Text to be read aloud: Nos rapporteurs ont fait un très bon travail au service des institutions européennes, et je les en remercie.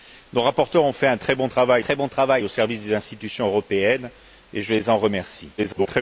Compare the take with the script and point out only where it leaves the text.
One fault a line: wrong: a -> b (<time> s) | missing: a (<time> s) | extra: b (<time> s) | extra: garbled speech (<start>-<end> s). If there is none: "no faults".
extra: très bon travail (1.8 s)
extra: garbled speech (5.6-6.0 s)